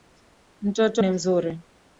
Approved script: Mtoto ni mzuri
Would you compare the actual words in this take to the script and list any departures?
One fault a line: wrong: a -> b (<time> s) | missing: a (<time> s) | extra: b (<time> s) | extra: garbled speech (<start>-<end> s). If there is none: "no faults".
no faults